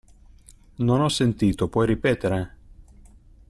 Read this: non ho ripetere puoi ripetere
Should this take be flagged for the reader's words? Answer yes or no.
yes